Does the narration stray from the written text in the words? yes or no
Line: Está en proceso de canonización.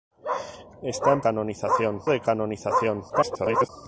yes